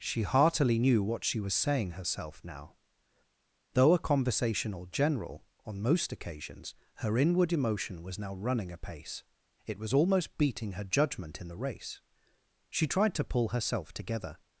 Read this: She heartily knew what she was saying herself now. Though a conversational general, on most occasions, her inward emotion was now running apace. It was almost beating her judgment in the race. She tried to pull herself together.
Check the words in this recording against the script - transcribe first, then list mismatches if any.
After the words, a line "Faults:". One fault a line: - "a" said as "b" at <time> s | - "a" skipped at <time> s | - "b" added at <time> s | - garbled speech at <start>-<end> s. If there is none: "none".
She heartily knew what she was saying herself now. Though a conversational general, on most occasions, her inward emotion was now running apace. It was almost beating her judgment in the race. She tried to pull herself together.
Faults:
none